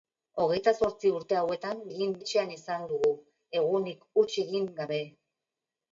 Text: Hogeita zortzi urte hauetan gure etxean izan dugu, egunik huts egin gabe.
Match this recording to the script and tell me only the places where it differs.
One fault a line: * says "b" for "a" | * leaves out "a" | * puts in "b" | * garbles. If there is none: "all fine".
* says "egin" for "gure"